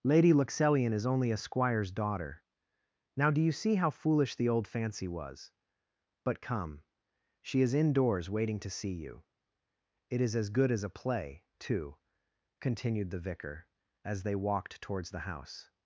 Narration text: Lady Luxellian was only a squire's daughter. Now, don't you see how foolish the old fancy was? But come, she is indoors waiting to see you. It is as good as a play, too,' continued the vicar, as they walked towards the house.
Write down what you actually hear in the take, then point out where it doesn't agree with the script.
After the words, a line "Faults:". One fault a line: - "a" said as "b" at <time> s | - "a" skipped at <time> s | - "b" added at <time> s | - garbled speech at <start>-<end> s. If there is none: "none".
Lady Luxellian is only a squire's daughter. Now, do you see how foolish the old fancy was? But come, she is indoors waiting to see you. It is as good as a play, too,' continued the vicar, as they walked towards the house.
Faults:
- "was" said as "is" at 0.9 s
- "don't" said as "do" at 3.3 s